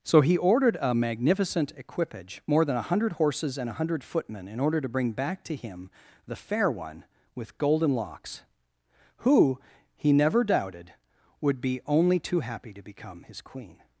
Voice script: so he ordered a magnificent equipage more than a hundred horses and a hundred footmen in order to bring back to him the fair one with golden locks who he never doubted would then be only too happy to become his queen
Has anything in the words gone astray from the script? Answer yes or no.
yes